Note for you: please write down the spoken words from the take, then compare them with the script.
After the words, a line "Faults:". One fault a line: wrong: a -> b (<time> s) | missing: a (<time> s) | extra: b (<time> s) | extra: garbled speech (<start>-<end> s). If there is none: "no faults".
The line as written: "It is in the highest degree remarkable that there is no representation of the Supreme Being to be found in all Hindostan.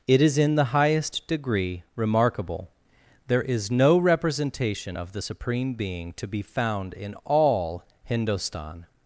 "It is in the highest degree remarkable there is no representation of the Supreme Being to be found in all Hindostan.
Faults:
missing: that (2.7 s)